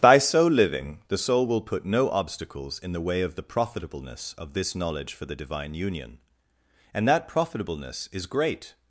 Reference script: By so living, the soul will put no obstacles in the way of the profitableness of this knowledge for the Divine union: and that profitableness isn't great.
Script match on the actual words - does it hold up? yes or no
no